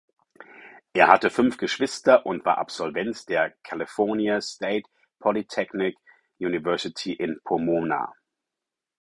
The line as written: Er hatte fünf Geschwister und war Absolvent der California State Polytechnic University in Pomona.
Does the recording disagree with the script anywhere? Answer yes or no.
no